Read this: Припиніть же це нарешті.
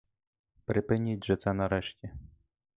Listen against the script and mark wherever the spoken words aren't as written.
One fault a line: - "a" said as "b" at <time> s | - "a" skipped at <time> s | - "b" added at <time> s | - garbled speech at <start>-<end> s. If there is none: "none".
none